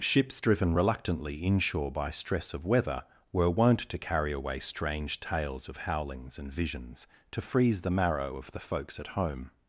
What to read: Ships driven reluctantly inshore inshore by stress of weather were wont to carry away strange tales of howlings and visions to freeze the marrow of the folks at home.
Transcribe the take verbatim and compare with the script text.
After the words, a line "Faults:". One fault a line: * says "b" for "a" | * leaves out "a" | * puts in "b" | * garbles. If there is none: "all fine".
Ships driven reluctantly inshore by stress of weather were wont to carry away strange tales of howlings and visions to freeze the marrow of the folks at home.
Faults:
* leaves out "inshore"